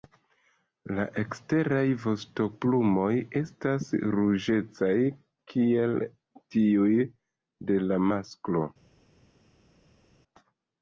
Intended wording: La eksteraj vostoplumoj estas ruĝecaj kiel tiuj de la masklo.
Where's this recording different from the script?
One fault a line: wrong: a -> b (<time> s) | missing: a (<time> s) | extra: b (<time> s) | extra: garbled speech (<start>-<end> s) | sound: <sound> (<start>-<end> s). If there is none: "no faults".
no faults